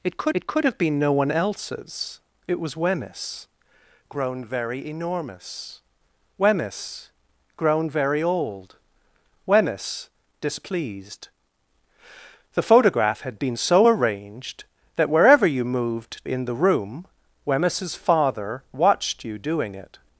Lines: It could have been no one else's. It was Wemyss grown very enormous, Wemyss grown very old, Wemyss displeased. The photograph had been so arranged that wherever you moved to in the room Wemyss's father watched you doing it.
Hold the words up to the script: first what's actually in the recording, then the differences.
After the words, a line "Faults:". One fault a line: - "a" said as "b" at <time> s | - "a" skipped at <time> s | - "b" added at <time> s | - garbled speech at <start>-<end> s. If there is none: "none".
It could it could have been no one else's. It was Wemyss grown very enormous, Wemyss grown very old, Wemyss displeased. The photograph had been so arranged that wherever you moved in the room Wemyss's father watched you doing it.
Faults:
- "it could" added at 0.3 s
- "to" skipped at 16.3 s